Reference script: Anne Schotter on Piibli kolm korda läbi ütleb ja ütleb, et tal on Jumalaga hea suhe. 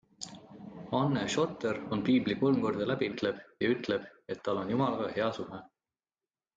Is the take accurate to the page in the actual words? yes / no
yes